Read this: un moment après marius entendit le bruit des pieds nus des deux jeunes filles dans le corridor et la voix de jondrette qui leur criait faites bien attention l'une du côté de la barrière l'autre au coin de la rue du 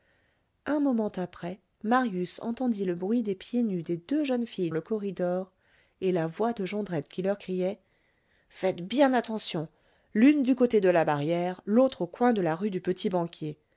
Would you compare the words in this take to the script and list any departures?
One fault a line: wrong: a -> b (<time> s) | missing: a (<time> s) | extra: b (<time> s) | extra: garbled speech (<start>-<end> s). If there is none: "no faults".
missing: dans (4.7 s)